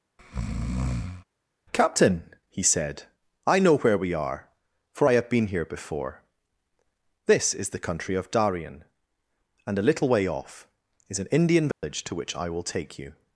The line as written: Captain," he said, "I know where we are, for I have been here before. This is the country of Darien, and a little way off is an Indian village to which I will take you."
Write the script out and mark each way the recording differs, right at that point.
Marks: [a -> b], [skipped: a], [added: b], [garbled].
Captain," he said, "I know where we are, for I have been here before. This is the country of Darien, and a little way off is an Indian village to which I will take you."